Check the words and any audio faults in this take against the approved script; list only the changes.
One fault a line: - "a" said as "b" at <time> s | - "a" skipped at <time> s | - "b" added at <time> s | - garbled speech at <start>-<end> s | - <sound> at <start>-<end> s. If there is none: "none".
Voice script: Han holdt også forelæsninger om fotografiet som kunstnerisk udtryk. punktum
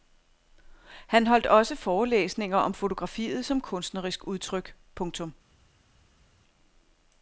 none